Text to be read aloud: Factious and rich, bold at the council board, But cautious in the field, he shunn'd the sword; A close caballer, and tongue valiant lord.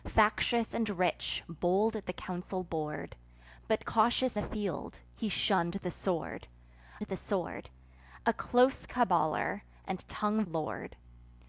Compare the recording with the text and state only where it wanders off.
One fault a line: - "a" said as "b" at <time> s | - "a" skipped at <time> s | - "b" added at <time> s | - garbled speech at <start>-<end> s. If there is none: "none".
- "in" skipped at 4.4 s
- "the sword" added at 7.0 s
- "valiant" skipped at 10.4 s